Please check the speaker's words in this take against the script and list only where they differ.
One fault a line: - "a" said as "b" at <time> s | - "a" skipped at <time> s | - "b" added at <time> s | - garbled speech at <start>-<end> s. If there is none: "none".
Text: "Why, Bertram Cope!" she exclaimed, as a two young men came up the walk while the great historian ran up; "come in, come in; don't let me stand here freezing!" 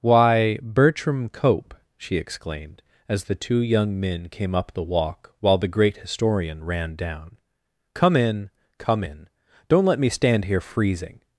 - "a" said as "the" at 3.2 s
- "up" said as "down" at 7.0 s